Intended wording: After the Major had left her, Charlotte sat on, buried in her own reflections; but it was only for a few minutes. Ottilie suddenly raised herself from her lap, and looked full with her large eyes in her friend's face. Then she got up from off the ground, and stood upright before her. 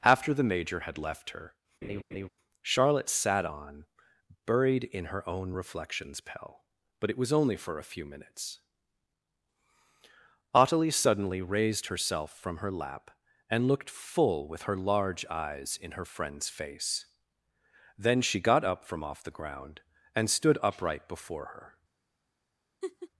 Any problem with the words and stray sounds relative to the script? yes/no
yes